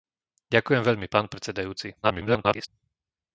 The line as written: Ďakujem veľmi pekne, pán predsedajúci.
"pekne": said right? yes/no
no